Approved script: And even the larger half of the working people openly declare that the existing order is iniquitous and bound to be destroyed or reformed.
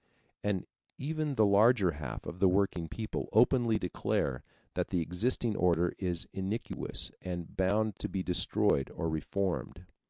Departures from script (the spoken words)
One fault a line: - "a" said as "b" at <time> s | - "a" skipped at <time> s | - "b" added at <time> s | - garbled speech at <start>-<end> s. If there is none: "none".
none